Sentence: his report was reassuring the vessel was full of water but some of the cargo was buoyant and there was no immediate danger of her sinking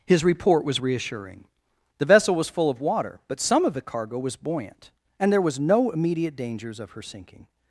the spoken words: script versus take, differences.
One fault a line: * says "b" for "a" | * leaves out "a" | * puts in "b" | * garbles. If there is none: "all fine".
* says "dangers" for "danger"